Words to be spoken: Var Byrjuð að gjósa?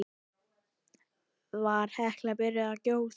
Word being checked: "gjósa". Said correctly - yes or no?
yes